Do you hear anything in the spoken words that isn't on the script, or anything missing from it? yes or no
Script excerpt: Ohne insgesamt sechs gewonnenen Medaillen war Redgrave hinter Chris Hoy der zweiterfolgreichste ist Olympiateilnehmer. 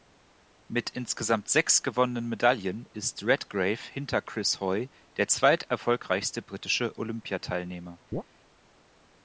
yes